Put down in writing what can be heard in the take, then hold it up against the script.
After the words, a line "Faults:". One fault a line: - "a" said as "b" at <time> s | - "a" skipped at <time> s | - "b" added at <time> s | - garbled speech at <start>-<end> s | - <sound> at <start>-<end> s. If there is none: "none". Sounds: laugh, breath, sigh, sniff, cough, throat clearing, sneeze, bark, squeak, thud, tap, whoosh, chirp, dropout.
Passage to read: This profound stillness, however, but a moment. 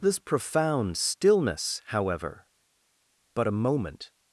This profound stillness, however, but a moment.
Faults:
none